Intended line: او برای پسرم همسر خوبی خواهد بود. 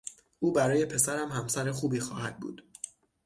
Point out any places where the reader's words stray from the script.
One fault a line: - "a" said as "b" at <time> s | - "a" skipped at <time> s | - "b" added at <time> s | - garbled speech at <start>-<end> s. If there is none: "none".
none